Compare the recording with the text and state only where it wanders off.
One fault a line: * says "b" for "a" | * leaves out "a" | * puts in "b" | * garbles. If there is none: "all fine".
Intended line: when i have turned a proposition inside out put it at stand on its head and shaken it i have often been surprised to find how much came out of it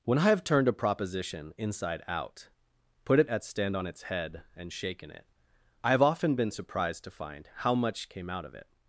all fine